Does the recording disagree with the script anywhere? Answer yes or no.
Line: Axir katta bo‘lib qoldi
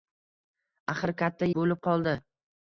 no